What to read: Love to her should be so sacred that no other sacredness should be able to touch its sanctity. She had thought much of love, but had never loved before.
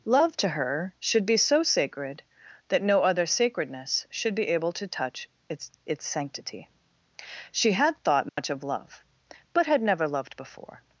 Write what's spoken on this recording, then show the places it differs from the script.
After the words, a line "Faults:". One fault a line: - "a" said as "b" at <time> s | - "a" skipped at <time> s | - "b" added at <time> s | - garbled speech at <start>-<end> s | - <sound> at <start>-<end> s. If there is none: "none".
Love to her should be so sacred that no other sacredness should be able to touch its its sanctity. She had thought much of love, but had never loved before.
Faults:
- "its" added at 5.8 s
- dropout at 8.3-8.4 s